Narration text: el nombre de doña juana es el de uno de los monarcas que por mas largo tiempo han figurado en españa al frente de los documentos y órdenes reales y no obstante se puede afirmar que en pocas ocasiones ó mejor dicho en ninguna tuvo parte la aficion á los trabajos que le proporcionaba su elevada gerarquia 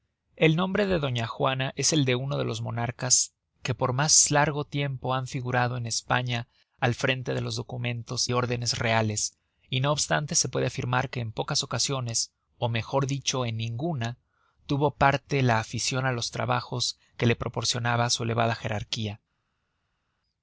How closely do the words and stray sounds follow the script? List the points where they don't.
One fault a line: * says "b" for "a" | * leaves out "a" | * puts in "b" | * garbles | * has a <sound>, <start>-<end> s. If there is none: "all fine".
* leaves out "y"